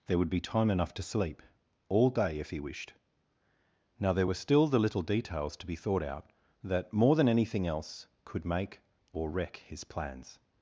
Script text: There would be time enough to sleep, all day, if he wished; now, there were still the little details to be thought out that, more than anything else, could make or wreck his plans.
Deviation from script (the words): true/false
false